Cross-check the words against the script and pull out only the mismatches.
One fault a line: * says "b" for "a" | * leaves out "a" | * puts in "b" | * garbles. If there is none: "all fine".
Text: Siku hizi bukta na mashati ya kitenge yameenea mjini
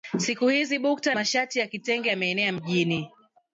* leaves out "na"